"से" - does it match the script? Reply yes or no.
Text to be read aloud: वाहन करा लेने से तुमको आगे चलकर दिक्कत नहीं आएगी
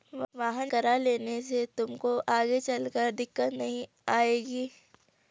yes